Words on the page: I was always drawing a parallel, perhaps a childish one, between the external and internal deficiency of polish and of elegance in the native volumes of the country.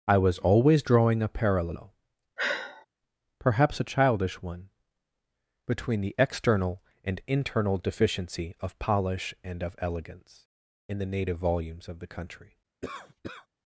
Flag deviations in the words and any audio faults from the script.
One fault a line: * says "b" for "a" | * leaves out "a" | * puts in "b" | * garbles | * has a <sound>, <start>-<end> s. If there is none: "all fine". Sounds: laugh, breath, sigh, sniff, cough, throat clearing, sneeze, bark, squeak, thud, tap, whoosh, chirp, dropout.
* has a sigh, 2.4-2.9 s
* has a cough, 12.8-13.5 s